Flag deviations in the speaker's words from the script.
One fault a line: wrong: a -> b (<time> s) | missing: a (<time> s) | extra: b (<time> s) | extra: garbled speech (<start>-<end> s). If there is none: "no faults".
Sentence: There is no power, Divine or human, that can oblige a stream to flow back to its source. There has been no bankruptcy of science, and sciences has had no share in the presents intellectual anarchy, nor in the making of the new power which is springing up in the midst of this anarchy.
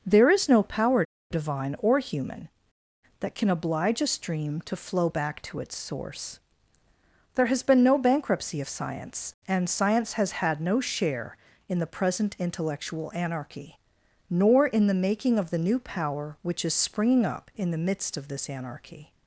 wrong: sciences -> science (9.7 s)
wrong: presents -> present (11.9 s)